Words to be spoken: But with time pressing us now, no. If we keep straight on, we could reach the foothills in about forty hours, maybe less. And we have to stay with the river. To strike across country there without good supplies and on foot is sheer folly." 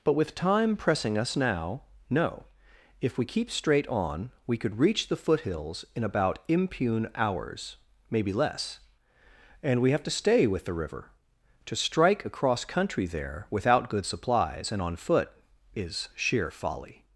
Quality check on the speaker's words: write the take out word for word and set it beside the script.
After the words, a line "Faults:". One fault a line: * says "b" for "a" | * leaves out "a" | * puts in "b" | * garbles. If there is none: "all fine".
But with time pressing us now, no. If we keep straight on, we could reach the foothills in about impune hours, maybe less. And we have to stay with the river. To strike across country there without good supplies and on foot is sheer folly."
Faults:
* says "impune" for "forty"